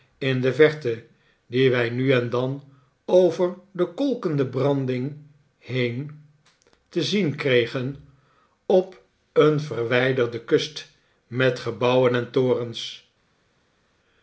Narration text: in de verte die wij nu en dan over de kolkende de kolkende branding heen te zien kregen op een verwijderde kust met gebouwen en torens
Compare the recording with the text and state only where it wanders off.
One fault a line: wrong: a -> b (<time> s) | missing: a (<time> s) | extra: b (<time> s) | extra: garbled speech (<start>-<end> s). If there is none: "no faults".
missing: de kolkende (4.5 s)